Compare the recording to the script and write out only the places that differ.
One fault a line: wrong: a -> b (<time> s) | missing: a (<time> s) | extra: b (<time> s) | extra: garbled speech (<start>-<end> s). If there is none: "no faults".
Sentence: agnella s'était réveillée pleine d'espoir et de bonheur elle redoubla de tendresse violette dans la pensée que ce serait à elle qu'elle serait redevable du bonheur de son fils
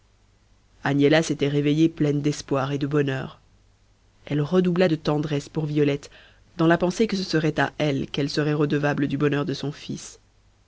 extra: pour (5.5 s)